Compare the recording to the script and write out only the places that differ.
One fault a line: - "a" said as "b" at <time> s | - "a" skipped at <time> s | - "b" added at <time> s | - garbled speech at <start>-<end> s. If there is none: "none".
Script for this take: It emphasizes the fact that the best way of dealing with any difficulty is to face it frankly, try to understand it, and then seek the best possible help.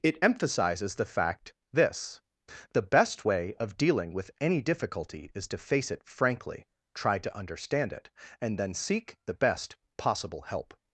- "that" said as "this" at 1.7 s